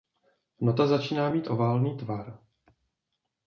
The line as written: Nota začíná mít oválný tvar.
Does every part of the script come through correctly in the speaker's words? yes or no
yes